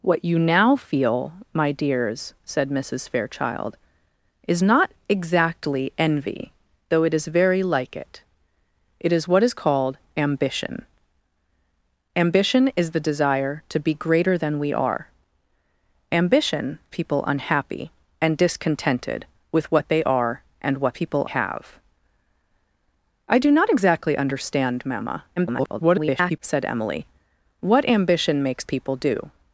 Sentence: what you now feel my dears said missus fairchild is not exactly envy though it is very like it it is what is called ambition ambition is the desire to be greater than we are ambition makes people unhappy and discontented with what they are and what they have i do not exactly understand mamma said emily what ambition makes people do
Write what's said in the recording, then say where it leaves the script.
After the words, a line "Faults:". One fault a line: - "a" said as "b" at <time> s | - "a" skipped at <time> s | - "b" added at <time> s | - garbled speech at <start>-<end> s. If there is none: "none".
what you now feel my dears said missus fairchild is not exactly envy though it is very like it it is what is called ambition ambition is the desire to be greater than we are ambition people unhappy and discontented with what they are and what people have i do not exactly understand mamma [garbled] said emily what ambition makes people do
Faults:
- "makes" skipped at 16.8 s
- "they" said as "people" at 20.9 s
- garbled speech at 25.4-26.4 s